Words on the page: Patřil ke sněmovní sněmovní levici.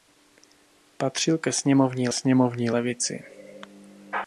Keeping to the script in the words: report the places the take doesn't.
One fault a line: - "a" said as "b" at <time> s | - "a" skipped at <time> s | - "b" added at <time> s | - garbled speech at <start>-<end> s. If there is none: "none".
none